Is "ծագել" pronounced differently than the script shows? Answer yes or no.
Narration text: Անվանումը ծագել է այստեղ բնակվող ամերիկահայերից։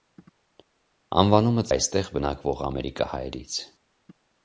yes